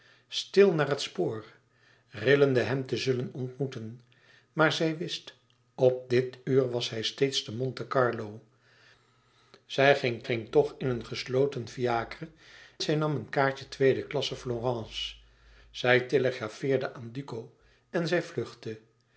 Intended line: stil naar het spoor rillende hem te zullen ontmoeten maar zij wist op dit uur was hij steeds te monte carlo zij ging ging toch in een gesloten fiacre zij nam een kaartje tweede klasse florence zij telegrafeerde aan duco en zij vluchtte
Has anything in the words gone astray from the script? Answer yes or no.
no